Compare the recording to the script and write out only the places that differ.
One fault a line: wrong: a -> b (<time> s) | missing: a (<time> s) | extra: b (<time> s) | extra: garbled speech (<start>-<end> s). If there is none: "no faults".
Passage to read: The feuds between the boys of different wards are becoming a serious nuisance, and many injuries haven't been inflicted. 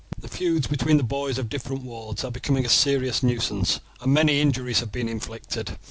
wrong: haven't -> have (4.8 s)